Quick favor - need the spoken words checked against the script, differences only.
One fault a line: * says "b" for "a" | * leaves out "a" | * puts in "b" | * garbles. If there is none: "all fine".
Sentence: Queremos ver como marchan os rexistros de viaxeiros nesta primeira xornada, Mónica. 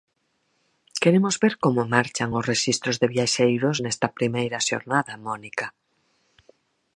all fine